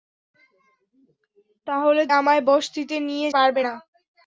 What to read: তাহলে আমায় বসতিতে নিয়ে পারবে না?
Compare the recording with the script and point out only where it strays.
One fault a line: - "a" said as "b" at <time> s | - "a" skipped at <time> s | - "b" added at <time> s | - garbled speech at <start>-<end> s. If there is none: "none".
none